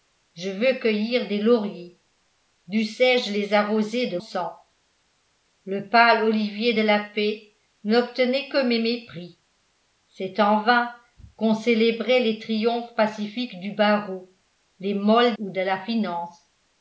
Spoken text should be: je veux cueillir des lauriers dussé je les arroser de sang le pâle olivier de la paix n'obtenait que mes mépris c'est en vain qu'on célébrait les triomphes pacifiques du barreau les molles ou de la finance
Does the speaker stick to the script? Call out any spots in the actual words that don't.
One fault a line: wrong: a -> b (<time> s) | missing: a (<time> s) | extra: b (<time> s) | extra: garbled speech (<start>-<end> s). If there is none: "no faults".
no faults